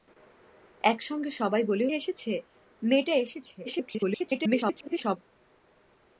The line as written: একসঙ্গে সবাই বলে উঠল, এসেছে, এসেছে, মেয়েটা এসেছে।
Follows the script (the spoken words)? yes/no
no